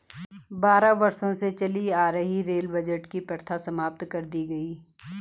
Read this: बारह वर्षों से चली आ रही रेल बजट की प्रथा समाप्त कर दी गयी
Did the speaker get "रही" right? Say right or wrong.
right